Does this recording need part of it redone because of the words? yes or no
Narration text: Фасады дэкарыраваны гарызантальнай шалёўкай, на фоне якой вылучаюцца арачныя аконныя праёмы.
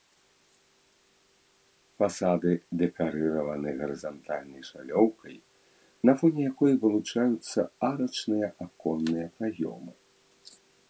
no